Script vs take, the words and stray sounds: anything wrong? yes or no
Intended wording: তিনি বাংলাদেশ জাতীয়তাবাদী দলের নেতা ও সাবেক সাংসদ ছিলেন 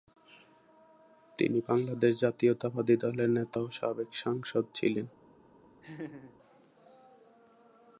yes